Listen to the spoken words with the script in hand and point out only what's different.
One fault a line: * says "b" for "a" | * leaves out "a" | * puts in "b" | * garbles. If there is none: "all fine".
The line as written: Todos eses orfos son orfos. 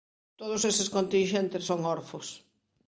* says "continxentes" for "orfos"